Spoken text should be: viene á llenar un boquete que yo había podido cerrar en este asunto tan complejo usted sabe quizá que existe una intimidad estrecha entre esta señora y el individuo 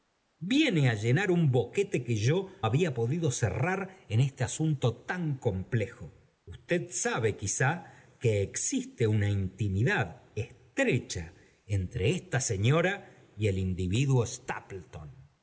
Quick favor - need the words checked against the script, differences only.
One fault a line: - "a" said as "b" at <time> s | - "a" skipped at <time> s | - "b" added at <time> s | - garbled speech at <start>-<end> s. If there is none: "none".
none